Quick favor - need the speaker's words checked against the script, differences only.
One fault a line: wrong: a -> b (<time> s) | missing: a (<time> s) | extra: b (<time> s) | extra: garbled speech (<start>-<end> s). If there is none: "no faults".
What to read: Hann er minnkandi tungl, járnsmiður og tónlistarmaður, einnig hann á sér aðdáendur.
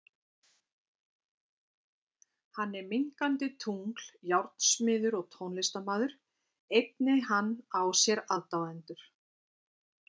no faults